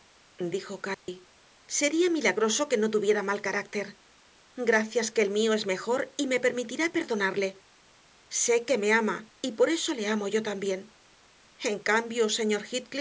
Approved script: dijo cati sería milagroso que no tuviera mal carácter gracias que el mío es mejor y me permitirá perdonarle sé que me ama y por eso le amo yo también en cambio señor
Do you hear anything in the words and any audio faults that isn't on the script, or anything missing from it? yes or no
yes